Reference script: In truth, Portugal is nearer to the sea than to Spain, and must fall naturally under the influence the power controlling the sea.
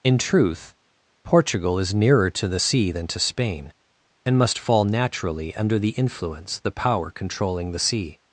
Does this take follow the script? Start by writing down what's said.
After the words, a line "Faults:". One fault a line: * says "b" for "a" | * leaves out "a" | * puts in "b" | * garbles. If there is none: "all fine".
In truth, Portugal is nearer to the sea than to Spain, and must fall naturally under the influence the power controlling the sea.
Faults:
all fine